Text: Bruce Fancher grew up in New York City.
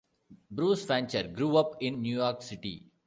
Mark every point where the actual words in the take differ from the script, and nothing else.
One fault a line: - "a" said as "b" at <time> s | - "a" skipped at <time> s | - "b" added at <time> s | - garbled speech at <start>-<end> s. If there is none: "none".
none